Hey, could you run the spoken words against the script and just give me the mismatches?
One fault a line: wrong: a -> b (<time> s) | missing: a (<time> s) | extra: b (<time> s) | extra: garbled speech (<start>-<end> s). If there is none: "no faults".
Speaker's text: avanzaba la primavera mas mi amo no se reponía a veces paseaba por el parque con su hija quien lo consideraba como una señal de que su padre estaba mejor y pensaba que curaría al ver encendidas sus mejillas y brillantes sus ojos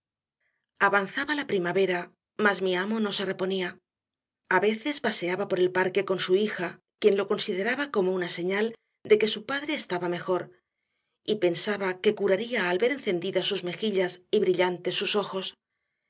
no faults